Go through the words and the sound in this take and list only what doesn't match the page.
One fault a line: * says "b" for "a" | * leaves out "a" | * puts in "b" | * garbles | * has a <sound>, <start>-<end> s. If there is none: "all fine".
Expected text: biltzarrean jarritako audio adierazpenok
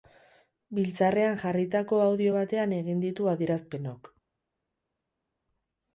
* puts in "batean egin ditu"